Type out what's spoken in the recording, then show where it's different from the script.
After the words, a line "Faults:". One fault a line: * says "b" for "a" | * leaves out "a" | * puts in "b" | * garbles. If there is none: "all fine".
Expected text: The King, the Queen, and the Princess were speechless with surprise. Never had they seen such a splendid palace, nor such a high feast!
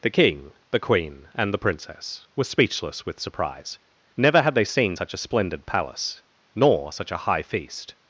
The King, the Queen, and the Princess were speechless with surprise. Never had they seen such a splendid palace, nor such a high feast!
Faults:
all fine